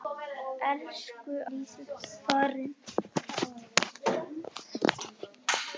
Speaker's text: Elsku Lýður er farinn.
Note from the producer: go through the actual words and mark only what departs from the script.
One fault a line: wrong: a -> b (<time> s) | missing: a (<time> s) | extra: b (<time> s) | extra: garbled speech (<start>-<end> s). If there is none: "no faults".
no faults